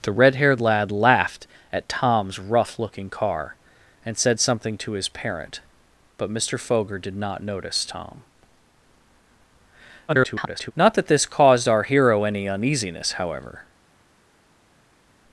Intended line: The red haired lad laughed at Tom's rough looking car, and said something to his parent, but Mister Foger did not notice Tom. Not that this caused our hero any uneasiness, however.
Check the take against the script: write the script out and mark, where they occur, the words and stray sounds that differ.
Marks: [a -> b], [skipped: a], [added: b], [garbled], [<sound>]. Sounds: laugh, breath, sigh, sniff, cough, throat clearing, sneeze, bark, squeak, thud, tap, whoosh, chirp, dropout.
The red haired lad laughed at Tom's rough looking car, and said something to his parent, but Mister Foger did not notice Tom. [garbled] Not that this caused our hero any uneasiness, however.